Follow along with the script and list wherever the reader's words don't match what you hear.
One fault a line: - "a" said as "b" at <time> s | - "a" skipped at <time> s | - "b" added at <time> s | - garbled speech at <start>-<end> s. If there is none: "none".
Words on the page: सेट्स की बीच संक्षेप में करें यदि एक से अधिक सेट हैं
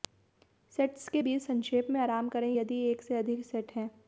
- "की" said as "के" at 1.1 s
- "आराम" added at 2.0 s